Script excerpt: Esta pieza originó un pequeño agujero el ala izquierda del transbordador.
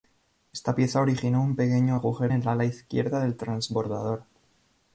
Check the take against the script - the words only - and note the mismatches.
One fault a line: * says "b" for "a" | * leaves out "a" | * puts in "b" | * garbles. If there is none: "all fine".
all fine